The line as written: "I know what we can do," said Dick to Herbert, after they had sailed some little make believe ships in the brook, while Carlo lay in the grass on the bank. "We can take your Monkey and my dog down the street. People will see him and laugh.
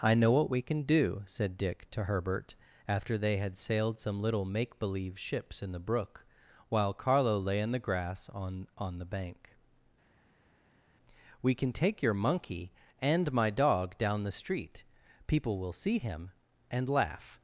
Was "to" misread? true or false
false